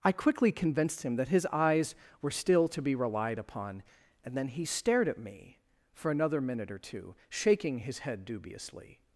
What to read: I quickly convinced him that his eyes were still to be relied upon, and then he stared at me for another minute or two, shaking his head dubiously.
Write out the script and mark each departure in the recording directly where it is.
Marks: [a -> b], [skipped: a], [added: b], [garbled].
I quickly convinced him that his eyes were still to be relied upon, and then he stared at me for another minute or two, shaking his head dubiously.